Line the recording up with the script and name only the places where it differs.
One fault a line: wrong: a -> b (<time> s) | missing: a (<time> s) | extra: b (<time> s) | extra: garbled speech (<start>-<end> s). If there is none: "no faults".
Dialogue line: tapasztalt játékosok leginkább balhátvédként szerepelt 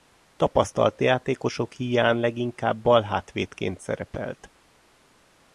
extra: híján (1.7 s)